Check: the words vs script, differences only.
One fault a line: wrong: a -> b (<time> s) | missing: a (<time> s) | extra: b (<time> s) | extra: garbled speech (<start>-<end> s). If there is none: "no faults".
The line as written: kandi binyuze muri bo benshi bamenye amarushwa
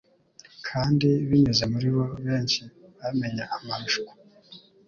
no faults